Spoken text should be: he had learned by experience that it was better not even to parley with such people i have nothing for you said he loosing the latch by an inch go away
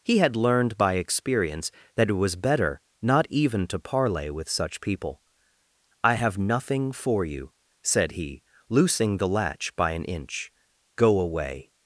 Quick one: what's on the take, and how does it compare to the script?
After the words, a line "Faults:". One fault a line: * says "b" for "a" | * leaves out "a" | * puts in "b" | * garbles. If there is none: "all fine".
he had learned by experience that it was better not even to parley with such people i have nothing for you said he loosing the latch by an inch go away
Faults:
all fine